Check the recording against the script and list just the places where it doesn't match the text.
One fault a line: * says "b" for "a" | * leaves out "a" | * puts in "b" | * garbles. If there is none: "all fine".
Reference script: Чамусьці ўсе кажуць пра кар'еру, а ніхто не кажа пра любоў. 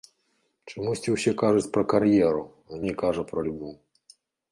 * leaves out "ніхто"